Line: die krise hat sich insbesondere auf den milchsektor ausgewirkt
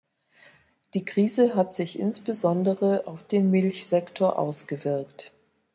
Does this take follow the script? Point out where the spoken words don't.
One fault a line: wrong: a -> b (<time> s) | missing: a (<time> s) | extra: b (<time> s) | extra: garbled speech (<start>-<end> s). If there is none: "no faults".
no faults